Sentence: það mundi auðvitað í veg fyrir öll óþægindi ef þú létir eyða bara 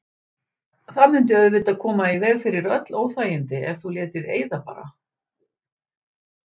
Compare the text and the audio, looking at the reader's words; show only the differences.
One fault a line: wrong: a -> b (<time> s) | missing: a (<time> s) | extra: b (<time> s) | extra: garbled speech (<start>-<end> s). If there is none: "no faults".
extra: koma (1.8 s)